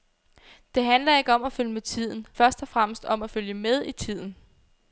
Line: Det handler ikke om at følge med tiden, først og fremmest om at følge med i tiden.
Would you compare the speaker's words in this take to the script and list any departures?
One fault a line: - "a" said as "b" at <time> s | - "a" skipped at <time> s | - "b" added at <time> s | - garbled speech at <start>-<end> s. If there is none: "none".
none